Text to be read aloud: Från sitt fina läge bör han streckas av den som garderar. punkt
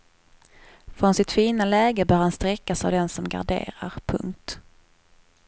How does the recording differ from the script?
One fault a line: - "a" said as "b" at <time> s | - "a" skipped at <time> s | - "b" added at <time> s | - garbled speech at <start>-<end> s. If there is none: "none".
none